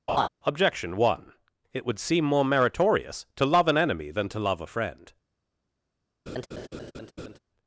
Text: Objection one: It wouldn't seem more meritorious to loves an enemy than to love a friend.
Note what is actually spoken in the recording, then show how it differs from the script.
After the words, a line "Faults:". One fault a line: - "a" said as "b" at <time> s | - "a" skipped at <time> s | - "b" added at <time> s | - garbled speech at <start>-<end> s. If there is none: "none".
Objection one: It would seem more meritorious to love an enemy than to love a friend.
Faults:
- "wouldn't" said as "would" at 1.9 s
- "loves" said as "love" at 3.5 s